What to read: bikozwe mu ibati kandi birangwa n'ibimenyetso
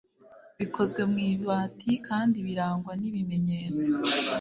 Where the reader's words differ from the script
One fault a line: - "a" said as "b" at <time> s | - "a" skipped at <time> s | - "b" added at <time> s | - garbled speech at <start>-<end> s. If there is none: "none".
none